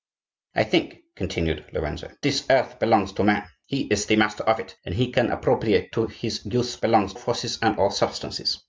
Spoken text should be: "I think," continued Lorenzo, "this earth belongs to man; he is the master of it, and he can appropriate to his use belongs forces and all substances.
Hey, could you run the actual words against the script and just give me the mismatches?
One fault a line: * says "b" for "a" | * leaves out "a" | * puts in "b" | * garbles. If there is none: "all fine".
all fine